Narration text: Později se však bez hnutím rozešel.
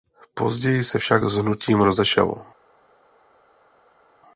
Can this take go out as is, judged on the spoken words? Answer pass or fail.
fail